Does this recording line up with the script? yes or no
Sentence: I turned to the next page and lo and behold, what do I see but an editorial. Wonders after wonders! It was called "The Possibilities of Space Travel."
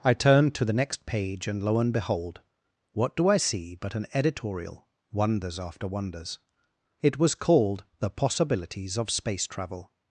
yes